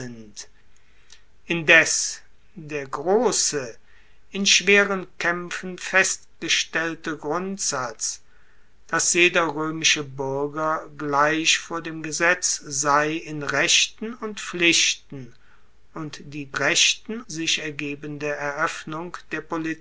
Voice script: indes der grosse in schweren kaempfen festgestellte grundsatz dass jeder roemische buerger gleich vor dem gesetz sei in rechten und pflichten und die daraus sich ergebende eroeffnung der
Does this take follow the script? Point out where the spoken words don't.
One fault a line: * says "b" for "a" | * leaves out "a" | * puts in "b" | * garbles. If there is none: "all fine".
* says "rechten" for "daraus"